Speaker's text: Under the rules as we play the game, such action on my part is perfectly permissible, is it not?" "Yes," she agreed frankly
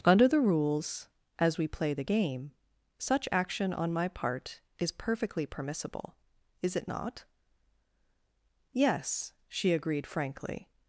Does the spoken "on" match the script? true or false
true